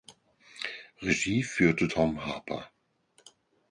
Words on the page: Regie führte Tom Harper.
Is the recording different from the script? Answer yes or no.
no